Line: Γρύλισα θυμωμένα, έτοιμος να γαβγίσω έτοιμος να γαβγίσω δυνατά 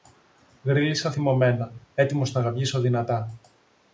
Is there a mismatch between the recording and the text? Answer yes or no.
yes